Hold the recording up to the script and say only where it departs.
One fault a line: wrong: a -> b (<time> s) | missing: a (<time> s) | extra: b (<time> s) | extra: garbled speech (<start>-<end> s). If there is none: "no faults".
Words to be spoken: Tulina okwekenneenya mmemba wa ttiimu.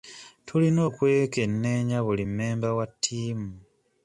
extra: buli (2.0 s)